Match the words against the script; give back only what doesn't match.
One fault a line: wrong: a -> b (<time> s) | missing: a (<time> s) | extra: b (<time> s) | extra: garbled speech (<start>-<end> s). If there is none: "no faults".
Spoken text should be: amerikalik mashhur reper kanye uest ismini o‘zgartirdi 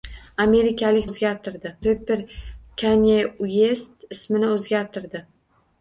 wrong: mashhur -> o‘zgartirdi (1.1 s)